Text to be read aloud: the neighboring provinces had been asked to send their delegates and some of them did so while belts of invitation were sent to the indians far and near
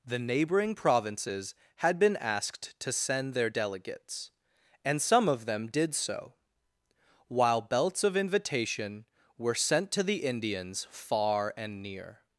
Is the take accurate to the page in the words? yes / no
yes